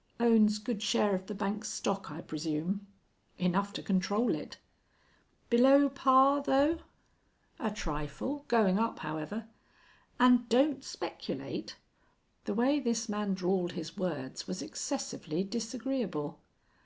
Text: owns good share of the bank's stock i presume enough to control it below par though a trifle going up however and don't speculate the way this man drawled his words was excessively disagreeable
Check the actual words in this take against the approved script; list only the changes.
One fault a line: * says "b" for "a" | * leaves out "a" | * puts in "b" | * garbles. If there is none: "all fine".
all fine